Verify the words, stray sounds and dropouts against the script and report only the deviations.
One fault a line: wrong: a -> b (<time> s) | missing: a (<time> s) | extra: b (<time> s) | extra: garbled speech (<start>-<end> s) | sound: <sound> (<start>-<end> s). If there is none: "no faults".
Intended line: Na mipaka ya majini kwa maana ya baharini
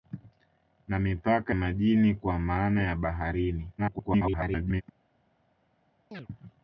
missing: ya (1.6 s)
extra: garbled speech (3.8-4.8 s)
sound: chirp (6.1-6.3 s)